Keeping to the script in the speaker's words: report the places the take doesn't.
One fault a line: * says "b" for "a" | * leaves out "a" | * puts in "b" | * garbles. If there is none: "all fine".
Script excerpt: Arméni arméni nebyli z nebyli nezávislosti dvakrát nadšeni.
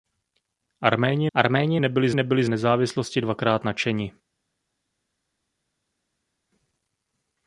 all fine